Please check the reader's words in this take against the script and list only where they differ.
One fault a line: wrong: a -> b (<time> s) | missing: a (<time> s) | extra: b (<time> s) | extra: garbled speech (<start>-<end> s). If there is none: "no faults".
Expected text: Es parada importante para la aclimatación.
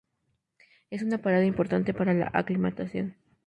extra: una (1.0 s)